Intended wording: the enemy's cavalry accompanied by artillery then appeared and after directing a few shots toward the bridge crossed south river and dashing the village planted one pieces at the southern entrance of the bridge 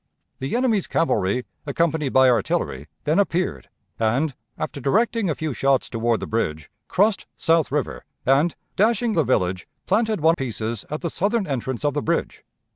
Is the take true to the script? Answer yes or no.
yes